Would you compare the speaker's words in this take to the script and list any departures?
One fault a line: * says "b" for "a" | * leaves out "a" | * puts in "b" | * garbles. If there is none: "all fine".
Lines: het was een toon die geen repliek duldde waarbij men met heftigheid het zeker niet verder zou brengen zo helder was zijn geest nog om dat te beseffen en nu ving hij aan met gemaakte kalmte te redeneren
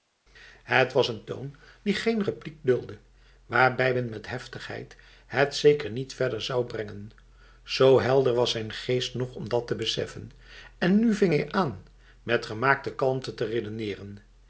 all fine